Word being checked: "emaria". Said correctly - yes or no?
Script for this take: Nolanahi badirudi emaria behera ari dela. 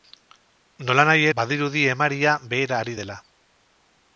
yes